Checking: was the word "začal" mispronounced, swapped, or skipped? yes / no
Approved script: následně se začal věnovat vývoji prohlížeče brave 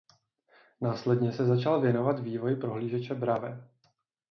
no